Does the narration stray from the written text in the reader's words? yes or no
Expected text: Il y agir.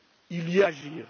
no